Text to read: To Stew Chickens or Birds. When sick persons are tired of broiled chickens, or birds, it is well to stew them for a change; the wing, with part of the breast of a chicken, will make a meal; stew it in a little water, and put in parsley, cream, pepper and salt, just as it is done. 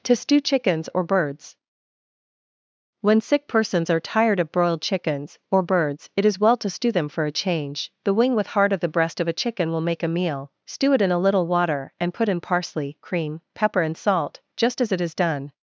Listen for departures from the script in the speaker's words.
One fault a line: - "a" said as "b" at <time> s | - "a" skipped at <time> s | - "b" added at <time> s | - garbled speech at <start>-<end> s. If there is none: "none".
- "part" said as "heart" at 8.5 s